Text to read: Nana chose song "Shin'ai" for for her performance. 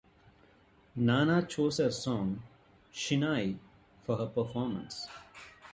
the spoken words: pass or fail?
fail